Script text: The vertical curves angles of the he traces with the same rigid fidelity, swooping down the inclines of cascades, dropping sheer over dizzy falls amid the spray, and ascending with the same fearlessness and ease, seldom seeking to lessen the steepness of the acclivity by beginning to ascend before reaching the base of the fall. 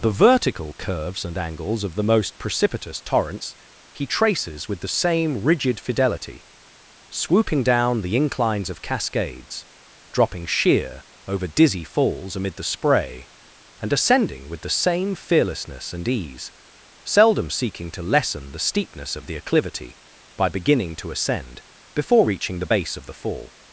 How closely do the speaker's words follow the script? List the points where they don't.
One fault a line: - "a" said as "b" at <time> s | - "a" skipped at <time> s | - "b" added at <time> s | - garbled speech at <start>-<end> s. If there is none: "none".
- "and" added at 1.2 s
- "most precipitous torrents" added at 2.0 s